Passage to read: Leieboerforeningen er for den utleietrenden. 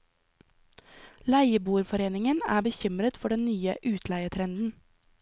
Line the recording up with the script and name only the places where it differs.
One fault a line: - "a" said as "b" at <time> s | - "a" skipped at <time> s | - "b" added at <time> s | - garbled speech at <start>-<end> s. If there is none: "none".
- "bekymret" added at 2.6 s
- "nye" added at 3.4 s